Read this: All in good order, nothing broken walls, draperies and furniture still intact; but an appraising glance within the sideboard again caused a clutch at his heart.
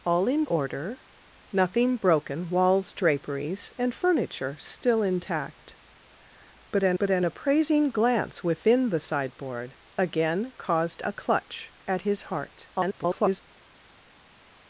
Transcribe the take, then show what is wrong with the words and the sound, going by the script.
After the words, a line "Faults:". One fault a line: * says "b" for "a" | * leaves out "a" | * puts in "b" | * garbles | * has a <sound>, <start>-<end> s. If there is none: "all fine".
All in order, nothing broken walls, draperies and furniture still intact; but an but an appraising glance within the sideboard again caused a clutch at his heart. [garbled]
Faults:
* leaves out "good"
* puts in "but an"
* garbles